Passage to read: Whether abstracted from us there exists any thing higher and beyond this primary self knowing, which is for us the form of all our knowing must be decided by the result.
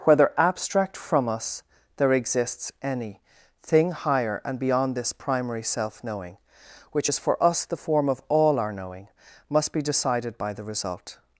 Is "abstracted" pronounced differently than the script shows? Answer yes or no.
yes